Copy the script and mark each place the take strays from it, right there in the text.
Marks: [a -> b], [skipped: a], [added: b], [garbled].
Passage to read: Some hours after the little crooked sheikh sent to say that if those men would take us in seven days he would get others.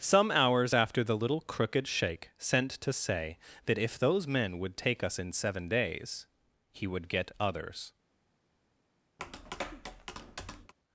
Some hours after the little crooked sheikh sent to say that if those men would take us in seven days he would get others.